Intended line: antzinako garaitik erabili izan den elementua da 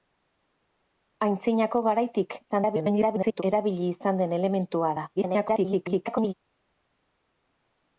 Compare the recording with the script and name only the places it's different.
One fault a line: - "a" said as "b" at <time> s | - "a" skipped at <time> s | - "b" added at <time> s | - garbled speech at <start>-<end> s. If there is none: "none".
- garbled speech at 2.5-3.4 s
- garbled speech at 5.2-6.3 s